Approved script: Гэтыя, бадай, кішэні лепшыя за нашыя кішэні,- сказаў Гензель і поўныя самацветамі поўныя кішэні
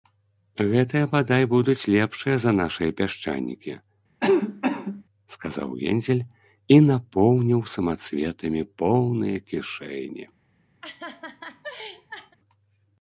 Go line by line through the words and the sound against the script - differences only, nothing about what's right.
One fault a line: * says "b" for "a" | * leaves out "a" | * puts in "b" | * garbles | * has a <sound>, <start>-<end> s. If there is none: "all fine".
* says "будуць" for "кішэні"
* says "пясчанікі" for "кішэні"
* has a cough, 4.2-5.0 s
* says "напоўніў" for "поўныя"
* has a laugh, 10.8-12.4 s